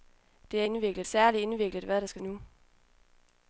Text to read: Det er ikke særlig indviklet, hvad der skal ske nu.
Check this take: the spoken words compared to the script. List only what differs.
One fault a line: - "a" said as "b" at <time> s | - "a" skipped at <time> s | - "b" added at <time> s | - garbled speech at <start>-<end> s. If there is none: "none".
- "ikke" said as "indviklet" at 0.6 s
- "ske" skipped at 2.2 s